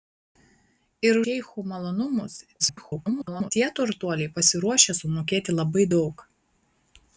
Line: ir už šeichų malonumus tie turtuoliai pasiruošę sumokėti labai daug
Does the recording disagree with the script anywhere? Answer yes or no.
yes